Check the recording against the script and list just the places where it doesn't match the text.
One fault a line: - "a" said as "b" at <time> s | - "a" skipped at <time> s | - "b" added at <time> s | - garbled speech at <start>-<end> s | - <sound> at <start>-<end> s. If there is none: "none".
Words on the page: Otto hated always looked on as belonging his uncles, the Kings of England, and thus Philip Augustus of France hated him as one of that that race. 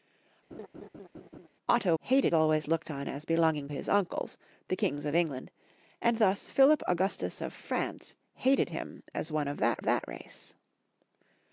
- laugh at 0.5-1.5 s